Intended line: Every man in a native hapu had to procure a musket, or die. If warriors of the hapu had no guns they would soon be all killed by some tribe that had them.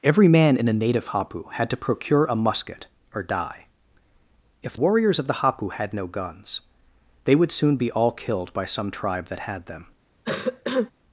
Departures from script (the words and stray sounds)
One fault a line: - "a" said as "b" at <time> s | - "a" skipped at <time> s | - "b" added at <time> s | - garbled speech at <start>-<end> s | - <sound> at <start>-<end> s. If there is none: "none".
- cough at 10.2-10.9 s